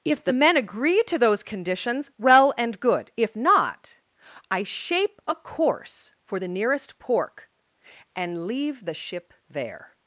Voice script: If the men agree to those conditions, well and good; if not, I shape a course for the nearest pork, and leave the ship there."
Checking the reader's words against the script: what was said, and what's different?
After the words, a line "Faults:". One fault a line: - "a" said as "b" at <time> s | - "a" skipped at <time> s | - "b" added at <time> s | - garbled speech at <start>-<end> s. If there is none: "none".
If the men agree to those conditions, well and good; if not, I shape a course for the nearest pork, and leave the ship there."
Faults:
none